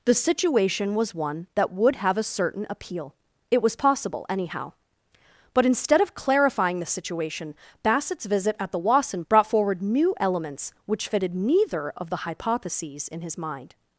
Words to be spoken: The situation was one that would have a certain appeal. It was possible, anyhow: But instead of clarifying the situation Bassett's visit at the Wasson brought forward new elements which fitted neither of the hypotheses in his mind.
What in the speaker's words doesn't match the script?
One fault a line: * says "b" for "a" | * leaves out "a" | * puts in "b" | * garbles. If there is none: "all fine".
all fine